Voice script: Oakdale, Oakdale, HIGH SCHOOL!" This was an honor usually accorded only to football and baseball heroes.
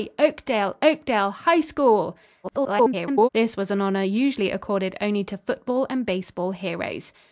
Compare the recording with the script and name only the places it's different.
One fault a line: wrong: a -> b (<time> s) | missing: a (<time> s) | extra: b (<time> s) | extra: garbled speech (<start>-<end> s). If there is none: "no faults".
extra: garbled speech (2.4-3.3 s)